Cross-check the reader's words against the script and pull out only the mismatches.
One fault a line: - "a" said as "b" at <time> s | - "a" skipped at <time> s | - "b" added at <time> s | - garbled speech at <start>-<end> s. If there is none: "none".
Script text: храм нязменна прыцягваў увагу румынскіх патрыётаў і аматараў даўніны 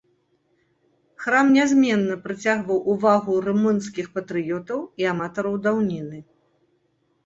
none